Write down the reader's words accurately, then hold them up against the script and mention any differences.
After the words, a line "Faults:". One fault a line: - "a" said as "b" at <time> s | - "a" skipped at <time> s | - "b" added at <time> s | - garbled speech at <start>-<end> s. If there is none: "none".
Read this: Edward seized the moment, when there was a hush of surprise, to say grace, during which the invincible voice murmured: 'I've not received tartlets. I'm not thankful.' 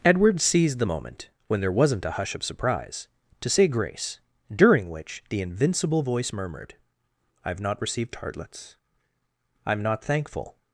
Edward seized the moment, when there wasn't a hush of surprise, to say grace, during which the invincible voice murmured: 'I've not received tartlets. I'm not thankful.'
Faults:
- "was" said as "wasn't" at 1.7 s